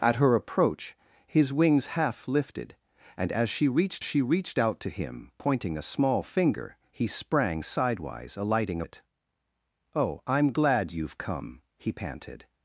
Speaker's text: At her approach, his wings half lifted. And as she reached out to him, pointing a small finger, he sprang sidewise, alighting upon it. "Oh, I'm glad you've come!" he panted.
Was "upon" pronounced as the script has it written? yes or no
no